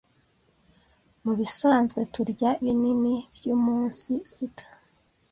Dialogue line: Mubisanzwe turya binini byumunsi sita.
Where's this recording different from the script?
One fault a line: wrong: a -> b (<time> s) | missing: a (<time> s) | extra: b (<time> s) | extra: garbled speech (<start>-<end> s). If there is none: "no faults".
no faults